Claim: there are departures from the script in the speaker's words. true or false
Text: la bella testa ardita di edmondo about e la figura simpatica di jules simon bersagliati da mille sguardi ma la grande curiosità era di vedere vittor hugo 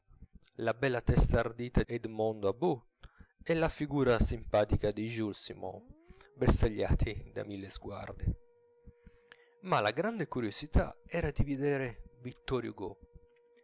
true